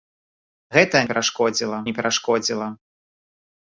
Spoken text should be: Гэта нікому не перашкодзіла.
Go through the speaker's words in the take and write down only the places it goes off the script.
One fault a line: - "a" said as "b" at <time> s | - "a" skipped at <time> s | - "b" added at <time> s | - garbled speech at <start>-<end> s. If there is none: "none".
- "нікому" said as "перашкодзіла" at 1.1 s